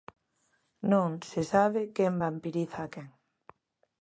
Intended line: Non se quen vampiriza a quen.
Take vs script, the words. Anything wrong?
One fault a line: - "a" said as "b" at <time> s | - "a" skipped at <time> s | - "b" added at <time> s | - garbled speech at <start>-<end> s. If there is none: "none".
- "sabe" added at 1.5 s